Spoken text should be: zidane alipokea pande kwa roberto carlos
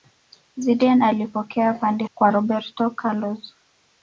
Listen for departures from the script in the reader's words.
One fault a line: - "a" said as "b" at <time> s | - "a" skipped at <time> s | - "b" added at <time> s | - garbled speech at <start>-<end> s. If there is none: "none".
none